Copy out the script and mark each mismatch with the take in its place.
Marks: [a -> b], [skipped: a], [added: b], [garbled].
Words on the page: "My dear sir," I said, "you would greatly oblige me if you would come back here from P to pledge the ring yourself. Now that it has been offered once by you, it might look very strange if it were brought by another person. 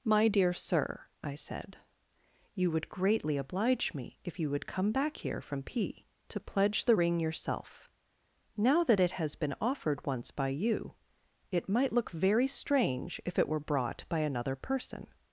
"My dear sir," I said, "you would greatly oblige me if you would come back here from P to pledge the ring yourself. Now that it has been offered once by you, it might look very strange if it were brought by another person.